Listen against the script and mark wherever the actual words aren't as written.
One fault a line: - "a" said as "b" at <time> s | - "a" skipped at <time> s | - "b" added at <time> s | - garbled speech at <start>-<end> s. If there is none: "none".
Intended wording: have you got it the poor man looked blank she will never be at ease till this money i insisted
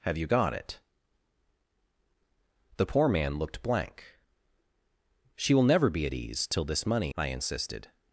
none